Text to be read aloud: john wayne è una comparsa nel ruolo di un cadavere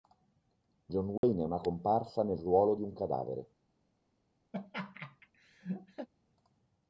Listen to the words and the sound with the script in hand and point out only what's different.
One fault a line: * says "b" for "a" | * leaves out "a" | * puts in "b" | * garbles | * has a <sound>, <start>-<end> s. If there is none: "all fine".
* has a dropout, 1.2-1.2 s
* has a laugh, 4.5-6.1 s